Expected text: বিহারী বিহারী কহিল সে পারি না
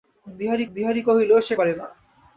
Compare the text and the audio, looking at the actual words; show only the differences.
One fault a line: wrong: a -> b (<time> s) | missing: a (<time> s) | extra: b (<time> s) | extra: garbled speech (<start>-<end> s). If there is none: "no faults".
no faults